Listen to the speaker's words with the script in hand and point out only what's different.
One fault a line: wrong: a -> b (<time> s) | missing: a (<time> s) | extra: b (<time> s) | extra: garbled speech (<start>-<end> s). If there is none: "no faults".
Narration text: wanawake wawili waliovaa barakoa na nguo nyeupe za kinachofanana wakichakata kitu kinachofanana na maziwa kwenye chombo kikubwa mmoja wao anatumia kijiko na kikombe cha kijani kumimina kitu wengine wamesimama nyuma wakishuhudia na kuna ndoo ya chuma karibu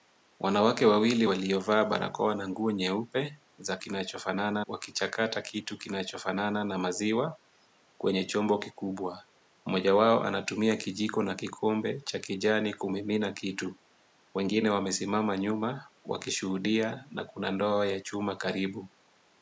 no faults